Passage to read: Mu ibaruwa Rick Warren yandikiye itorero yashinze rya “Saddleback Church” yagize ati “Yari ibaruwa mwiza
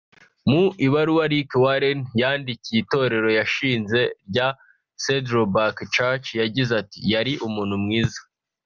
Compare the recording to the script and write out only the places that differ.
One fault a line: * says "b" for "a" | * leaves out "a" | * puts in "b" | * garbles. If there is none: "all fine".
* says "umuntu" for "ibaruwa"